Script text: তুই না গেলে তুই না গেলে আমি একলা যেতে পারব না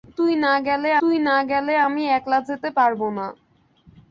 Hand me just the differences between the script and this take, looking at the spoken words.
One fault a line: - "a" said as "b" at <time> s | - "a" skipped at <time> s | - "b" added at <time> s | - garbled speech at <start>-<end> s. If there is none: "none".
none